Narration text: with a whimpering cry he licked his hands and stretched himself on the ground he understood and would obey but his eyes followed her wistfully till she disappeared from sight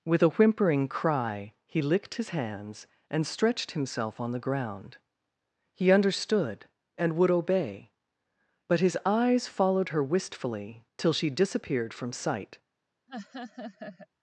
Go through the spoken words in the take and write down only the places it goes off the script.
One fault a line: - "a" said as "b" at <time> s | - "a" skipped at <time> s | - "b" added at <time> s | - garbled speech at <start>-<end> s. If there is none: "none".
none